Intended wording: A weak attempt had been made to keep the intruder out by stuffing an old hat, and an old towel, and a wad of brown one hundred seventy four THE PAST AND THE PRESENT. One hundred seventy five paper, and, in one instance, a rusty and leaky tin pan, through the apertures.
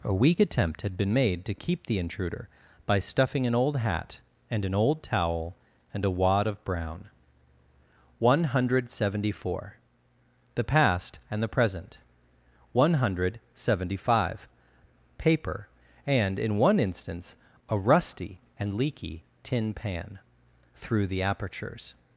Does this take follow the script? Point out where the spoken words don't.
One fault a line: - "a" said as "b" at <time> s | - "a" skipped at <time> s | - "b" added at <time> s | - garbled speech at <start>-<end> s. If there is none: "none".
- "out" skipped at 2.5 s